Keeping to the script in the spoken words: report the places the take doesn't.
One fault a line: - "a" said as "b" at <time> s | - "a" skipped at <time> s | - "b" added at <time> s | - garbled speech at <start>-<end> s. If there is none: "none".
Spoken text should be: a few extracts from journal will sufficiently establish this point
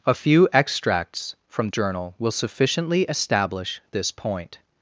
none